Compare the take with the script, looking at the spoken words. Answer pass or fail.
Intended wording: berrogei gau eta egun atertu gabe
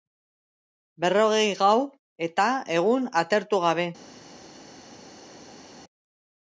pass